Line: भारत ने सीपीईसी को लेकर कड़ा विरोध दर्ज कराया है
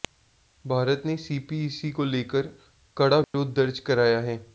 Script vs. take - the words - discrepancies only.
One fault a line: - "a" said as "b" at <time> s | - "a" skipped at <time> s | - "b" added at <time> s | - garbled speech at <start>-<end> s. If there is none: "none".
none